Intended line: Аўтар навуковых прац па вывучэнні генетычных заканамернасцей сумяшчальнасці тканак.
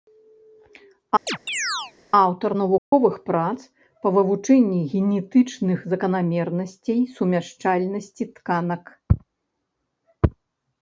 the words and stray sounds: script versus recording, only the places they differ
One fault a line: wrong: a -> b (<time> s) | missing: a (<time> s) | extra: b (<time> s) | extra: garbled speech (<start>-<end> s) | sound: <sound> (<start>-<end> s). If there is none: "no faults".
sound: chirp (1.3-1.9 s)
sound: dropout (2.8-2.9 s)